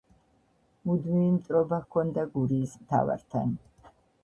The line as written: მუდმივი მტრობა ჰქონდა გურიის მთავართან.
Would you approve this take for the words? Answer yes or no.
yes